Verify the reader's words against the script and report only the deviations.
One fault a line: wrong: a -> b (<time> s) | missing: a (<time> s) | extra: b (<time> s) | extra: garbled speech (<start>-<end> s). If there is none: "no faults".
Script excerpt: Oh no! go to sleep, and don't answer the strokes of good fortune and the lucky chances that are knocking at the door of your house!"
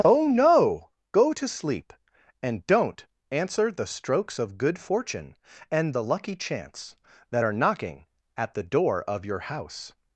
wrong: chances -> chance (6.4 s)